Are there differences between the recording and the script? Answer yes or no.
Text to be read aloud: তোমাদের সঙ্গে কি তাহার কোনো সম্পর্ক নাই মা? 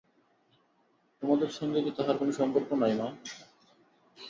no